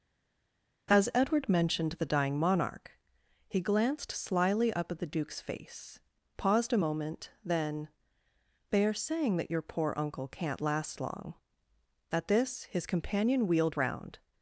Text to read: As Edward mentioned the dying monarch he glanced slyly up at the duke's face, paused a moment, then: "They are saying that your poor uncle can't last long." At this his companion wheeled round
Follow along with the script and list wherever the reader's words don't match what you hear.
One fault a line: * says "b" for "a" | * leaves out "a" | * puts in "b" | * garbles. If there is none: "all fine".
all fine